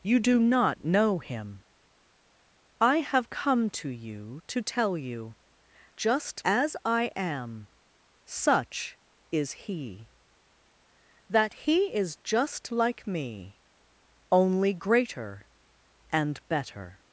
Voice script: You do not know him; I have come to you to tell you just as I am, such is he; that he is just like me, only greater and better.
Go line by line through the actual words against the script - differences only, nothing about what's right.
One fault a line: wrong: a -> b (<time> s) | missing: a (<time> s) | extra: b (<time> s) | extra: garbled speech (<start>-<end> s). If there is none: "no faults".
no faults